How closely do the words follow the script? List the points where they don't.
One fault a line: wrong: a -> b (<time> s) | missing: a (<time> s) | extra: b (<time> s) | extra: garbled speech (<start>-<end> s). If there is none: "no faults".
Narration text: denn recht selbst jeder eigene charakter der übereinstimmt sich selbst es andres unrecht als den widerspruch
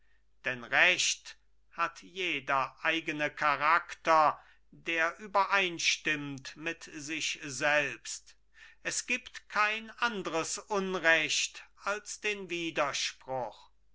wrong: selbst -> hat (1.7 s)
extra: mit (6.6 s)
extra: gibt kein (9.1 s)